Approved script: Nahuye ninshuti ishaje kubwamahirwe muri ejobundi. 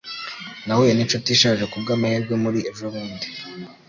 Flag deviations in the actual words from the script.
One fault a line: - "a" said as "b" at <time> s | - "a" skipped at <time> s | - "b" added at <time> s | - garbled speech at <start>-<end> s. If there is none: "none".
none